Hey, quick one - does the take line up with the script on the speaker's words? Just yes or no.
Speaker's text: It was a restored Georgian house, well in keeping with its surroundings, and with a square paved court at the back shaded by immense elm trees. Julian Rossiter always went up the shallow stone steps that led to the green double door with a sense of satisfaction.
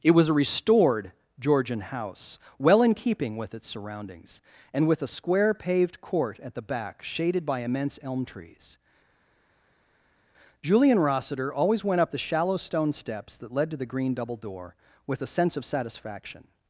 yes